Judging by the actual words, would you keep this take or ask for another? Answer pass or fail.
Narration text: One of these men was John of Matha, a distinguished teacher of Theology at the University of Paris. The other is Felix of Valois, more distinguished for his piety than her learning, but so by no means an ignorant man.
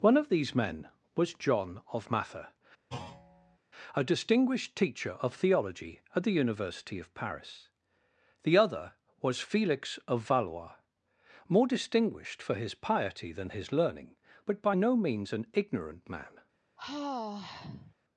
fail